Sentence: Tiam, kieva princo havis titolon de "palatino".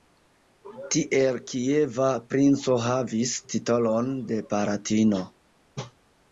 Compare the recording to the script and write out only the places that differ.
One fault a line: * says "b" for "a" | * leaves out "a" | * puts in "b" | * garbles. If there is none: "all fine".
* says "Tiel" for "Tiam"